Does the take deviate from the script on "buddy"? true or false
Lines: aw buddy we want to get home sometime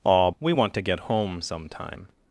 true